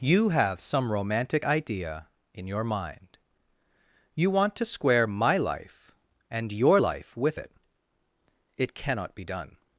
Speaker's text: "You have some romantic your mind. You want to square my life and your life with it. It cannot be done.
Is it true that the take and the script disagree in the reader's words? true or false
true